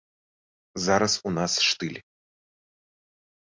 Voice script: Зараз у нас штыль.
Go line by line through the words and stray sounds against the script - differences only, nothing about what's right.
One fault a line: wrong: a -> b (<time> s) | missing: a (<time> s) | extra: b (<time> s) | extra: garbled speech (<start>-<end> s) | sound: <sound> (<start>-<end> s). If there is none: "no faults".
no faults